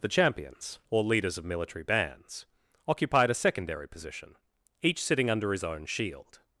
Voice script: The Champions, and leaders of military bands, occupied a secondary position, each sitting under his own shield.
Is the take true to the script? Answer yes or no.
no